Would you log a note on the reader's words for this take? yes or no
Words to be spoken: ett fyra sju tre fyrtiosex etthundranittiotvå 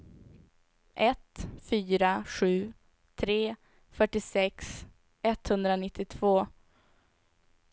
no